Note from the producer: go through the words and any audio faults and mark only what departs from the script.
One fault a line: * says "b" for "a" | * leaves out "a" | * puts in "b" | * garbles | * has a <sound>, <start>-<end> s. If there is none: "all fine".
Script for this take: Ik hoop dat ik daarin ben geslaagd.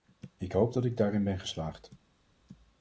all fine